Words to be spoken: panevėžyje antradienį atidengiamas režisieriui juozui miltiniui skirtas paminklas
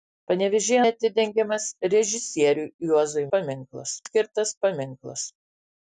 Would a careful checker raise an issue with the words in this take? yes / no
yes